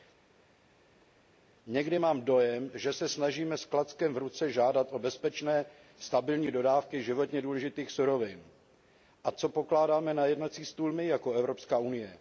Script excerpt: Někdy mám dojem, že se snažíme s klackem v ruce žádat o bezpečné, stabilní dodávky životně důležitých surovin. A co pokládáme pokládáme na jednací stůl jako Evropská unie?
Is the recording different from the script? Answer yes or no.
yes